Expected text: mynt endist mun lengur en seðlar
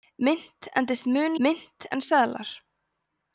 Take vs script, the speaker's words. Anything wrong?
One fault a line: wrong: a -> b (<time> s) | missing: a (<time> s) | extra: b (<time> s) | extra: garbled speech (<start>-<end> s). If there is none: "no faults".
wrong: lengur -> mynt (1.5 s)